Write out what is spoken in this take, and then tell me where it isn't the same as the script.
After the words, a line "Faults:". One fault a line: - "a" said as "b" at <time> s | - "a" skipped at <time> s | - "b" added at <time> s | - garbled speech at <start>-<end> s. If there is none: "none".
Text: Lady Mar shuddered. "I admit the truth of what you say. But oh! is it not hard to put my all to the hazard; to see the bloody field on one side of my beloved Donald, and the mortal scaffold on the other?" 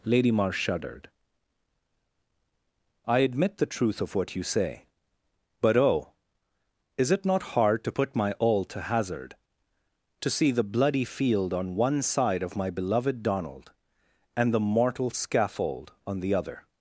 Lady Mar shuddered. "I admit the truth of what you say. But oh! is it not hard to put my all to hazard; to see the bloody field on one side of my beloved Donald, and the mortal scaffold on the other?"
Faults:
- "the" skipped at 8.8 s